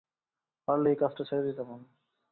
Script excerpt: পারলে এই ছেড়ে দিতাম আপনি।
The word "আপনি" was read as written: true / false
false